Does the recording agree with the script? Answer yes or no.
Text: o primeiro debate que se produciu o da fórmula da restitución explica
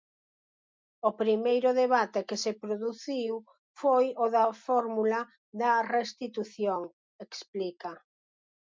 no